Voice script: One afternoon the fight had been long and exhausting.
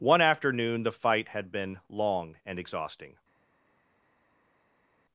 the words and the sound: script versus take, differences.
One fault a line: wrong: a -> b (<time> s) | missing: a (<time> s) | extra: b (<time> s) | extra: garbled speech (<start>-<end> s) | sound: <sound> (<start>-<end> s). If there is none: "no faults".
no faults